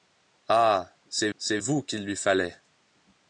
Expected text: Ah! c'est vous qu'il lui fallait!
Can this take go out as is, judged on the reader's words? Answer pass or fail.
fail